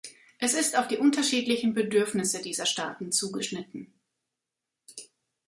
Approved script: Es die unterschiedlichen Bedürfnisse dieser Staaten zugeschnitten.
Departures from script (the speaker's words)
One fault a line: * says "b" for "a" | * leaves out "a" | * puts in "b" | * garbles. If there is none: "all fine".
* puts in "ist auf"